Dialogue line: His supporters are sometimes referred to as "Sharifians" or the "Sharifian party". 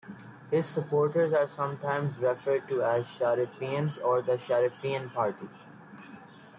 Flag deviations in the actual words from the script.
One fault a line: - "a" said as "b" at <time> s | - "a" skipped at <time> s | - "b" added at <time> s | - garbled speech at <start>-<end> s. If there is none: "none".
none